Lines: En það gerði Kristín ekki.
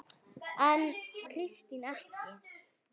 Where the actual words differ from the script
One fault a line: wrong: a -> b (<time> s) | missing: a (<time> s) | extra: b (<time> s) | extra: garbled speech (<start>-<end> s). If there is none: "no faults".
missing: það gerði (0.8 s)